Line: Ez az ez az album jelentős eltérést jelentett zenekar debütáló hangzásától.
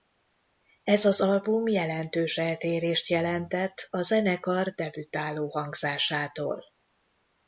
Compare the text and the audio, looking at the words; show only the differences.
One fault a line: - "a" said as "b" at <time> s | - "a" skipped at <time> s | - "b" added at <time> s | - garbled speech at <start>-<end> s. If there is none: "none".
- "ez az" skipped at 1.2 s
- "a" added at 3.9 s